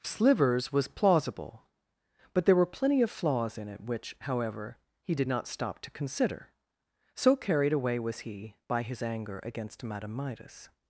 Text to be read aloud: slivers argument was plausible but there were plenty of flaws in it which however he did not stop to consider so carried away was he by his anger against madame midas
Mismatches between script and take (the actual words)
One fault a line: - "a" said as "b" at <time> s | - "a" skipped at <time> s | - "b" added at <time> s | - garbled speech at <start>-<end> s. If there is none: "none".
- "argument" skipped at 0.7 s